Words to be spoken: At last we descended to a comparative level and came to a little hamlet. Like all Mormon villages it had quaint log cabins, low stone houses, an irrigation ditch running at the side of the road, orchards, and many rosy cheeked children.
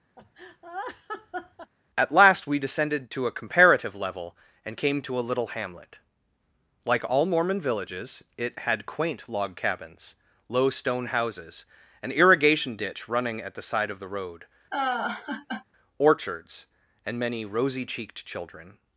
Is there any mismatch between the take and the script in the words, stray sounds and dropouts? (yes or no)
yes